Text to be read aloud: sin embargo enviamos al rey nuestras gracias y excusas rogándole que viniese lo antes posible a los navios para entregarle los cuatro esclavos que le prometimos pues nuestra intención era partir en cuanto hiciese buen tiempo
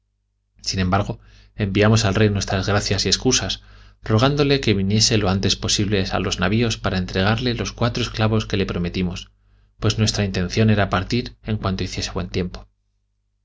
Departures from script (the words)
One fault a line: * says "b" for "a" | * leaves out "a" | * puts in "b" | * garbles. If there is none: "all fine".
all fine